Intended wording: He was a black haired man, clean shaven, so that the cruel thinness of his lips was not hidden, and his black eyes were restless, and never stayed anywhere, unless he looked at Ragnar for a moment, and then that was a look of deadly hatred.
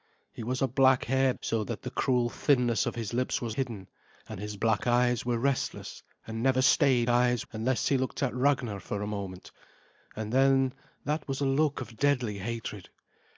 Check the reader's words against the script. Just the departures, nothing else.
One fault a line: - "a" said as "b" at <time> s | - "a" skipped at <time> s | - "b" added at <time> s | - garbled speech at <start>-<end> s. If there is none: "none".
- "man clean shaven" skipped at 1.4 s
- "not" skipped at 3.5 s
- "anywhere" said as "eyes" at 7.1 s